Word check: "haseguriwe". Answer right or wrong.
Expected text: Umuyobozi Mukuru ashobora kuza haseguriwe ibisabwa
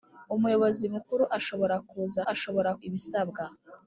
wrong